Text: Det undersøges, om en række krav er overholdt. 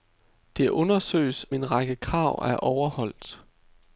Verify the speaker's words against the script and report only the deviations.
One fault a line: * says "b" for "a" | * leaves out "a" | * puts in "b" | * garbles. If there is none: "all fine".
* leaves out "om"